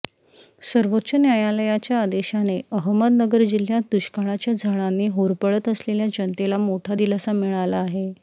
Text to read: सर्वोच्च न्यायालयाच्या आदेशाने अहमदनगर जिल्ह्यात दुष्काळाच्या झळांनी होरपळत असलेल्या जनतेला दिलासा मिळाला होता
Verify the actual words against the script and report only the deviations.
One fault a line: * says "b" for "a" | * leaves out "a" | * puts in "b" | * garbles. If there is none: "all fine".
* puts in "मोठा"
* says "आहे" for "होता"